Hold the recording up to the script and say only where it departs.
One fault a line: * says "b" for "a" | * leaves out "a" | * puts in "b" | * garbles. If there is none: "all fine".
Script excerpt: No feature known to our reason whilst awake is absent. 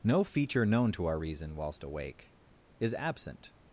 all fine